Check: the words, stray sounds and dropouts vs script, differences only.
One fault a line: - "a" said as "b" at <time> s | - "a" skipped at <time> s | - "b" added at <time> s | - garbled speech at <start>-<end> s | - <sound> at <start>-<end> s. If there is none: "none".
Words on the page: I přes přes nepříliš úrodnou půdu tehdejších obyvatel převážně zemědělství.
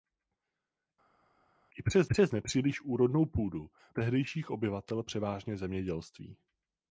none